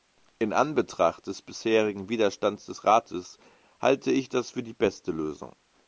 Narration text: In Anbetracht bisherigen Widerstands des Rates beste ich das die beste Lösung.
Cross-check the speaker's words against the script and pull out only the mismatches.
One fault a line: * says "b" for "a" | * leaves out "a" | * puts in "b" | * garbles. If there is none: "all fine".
* puts in "des"
* says "halte" for "beste"
* puts in "für"